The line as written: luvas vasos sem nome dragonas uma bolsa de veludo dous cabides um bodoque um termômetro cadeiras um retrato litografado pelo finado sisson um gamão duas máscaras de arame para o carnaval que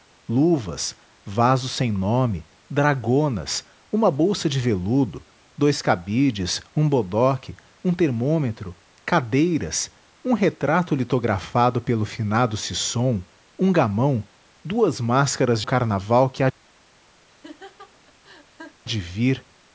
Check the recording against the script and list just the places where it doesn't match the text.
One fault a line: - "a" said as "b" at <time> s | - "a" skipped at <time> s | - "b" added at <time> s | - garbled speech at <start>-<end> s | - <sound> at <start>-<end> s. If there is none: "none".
- "de arame para" skipped at 15.6 s
- laugh at 17.3-18.8 s